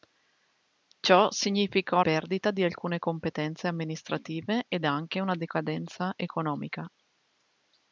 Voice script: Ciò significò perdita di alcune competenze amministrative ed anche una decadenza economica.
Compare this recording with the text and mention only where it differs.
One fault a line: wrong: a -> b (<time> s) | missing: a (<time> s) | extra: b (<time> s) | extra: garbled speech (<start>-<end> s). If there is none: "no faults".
no faults